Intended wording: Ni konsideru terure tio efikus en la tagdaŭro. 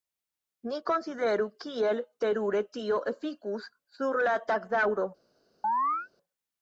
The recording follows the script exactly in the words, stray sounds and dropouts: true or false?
false